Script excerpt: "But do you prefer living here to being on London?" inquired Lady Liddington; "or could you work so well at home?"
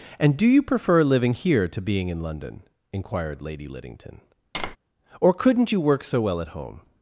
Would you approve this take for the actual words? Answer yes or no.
no